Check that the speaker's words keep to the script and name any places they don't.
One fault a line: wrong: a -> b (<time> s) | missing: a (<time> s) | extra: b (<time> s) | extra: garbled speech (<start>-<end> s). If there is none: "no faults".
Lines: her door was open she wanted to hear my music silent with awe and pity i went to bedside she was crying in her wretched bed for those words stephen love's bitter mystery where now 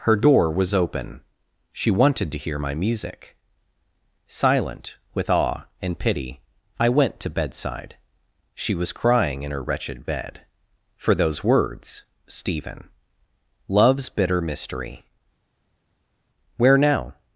no faults